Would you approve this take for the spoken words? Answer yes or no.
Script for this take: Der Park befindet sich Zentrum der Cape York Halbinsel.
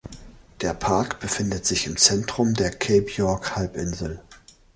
no